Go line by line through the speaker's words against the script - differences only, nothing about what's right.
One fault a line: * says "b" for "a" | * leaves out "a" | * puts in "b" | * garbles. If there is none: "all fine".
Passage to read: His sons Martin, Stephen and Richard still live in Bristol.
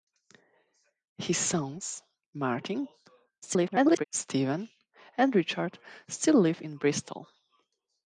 * garbles